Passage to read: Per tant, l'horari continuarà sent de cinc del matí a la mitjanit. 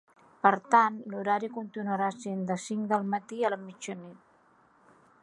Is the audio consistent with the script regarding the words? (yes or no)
yes